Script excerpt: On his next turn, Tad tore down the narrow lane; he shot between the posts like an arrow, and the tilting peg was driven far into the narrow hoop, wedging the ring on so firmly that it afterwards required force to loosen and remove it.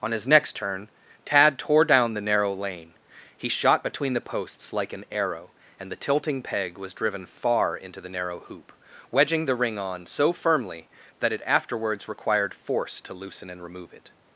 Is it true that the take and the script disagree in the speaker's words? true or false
false